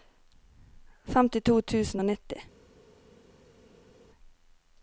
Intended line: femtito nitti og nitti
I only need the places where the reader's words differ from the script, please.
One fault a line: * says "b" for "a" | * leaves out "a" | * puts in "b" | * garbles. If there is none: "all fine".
* says "tusen" for "nitti"